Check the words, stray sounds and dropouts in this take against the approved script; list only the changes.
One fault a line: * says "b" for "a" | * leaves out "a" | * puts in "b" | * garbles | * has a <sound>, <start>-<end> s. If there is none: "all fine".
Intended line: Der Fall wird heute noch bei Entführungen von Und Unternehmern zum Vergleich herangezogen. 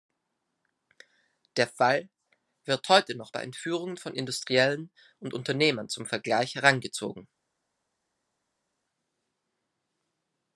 * puts in "Industriellen"